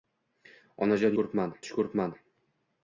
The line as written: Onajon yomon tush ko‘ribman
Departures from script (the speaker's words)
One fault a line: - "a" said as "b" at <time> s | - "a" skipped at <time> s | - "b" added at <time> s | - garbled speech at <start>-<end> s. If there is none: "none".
- "yomon" said as "ko‘ribman" at 1.2 s